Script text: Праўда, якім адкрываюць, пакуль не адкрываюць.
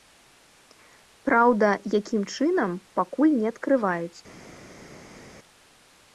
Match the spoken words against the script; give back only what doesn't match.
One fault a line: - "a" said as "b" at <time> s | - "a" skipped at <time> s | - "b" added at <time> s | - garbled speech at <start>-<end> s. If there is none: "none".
- "адкрываюць" said as "чынам" at 2.4 s